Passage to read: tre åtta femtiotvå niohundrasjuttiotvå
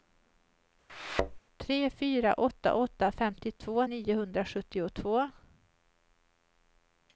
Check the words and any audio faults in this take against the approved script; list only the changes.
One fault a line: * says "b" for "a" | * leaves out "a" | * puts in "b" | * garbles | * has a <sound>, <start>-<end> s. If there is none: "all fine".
* has a thud, 0.9-1.4 s
* puts in "fyra åtta"